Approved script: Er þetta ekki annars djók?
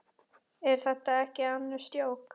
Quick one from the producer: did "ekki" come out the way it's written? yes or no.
yes